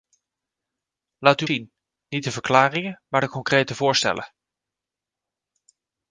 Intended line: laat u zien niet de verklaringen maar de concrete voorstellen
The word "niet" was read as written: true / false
true